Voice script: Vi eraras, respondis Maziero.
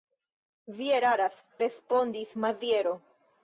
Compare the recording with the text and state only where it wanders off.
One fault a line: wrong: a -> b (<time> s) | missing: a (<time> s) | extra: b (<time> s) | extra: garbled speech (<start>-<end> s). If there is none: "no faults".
no faults